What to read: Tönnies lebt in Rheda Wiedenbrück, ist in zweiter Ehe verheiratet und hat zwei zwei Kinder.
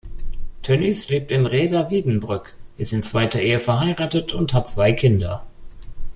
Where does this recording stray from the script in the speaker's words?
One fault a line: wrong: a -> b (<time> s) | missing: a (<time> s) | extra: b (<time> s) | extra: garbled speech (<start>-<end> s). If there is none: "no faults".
missing: zwei (4.9 s)